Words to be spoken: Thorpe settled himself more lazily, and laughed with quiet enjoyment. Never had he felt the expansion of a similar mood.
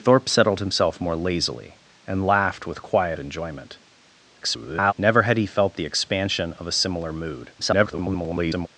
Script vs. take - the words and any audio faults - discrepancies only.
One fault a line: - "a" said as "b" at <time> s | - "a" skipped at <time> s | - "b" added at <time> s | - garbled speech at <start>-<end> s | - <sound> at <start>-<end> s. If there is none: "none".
- garbled speech at 4.4-4.9 s
- garbled speech at 7.6-8.7 s